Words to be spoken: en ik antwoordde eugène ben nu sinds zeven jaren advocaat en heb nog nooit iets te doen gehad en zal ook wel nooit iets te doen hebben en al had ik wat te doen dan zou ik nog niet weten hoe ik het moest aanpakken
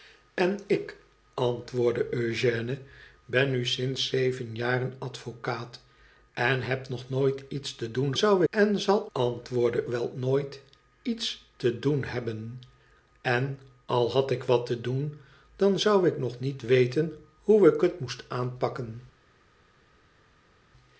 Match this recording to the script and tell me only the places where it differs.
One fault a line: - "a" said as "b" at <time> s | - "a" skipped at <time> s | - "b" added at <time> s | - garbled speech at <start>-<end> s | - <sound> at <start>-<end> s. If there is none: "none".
- "gehad" said as "zou" at 8.2 s
- "ook" said as "antwoordde" at 9.1 s